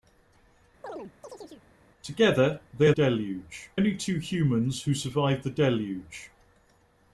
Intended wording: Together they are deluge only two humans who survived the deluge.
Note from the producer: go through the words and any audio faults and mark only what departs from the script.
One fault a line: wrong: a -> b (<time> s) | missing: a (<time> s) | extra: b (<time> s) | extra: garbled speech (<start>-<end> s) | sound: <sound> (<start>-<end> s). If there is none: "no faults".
sound: chirp (0.8-1.7 s)